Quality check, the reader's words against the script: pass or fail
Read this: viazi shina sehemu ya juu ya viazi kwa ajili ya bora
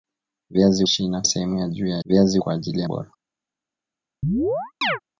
pass